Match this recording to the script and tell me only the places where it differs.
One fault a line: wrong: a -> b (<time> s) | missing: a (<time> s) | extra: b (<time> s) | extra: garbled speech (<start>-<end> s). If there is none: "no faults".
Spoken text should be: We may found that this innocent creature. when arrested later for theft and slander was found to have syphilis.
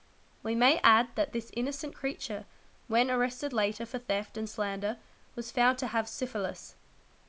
wrong: found -> add (0.8 s)